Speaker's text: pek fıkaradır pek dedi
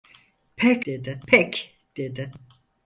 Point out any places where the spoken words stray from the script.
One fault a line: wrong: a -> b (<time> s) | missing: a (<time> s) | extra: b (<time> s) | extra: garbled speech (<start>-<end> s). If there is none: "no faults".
wrong: fıkaradır -> dedi (0.9 s)